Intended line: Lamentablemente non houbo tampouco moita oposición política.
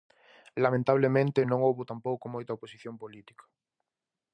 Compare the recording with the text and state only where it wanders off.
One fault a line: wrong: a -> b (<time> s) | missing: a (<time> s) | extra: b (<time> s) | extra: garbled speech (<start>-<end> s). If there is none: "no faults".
no faults